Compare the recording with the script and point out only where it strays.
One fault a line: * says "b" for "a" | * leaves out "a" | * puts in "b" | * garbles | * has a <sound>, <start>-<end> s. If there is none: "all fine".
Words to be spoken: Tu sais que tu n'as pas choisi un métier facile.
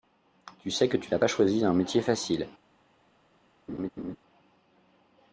* has a laugh, 3.7-4.2 s